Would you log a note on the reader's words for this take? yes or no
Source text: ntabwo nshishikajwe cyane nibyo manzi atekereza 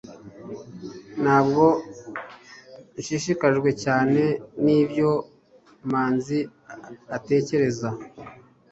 no